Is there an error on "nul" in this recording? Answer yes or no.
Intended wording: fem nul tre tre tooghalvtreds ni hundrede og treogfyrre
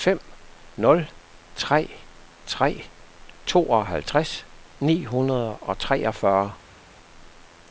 no